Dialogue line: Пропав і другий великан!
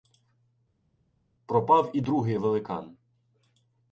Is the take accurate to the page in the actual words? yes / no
yes